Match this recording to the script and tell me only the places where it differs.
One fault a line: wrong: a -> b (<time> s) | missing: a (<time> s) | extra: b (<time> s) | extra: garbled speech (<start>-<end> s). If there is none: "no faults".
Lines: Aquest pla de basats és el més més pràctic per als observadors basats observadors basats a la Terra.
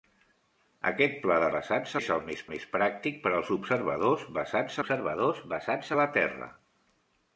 no faults